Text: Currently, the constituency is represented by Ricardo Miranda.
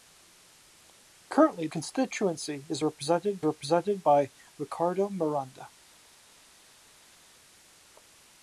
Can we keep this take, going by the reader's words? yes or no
no